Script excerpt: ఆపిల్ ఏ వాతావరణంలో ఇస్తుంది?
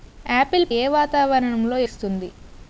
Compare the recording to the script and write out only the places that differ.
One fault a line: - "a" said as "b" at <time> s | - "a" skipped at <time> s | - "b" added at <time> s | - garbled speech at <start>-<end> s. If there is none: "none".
none